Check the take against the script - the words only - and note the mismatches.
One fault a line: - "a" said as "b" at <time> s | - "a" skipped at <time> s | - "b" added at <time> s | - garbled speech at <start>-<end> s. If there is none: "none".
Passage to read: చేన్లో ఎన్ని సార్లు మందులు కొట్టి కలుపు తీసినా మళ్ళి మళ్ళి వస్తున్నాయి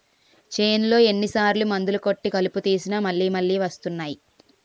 none